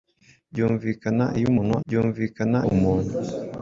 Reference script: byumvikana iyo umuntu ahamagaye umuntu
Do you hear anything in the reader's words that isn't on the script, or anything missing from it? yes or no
yes